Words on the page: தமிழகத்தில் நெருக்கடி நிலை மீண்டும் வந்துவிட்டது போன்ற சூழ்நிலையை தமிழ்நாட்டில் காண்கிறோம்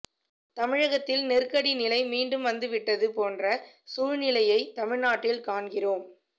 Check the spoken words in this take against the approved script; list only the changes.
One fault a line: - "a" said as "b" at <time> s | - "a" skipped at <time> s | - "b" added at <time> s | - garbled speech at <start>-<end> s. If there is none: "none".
none